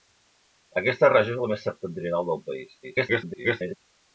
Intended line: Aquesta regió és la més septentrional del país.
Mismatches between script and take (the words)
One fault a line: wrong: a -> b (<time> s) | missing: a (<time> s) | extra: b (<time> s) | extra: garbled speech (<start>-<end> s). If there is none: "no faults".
extra: garbled speech (2.8-3.8 s)